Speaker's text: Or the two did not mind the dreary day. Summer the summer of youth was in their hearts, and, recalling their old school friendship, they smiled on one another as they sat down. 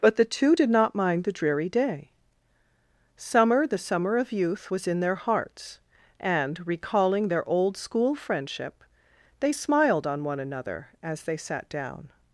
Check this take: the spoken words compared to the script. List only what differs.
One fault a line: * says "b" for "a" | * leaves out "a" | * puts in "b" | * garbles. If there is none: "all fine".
* says "But" for "Or"